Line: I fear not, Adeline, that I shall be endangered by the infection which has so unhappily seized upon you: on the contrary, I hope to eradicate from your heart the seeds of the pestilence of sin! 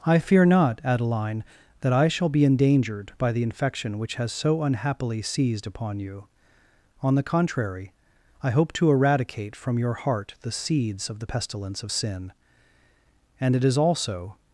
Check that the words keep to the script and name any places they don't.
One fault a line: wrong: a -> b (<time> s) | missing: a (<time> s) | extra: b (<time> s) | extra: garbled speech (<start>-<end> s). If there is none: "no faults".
extra: And it is also (13.4 s)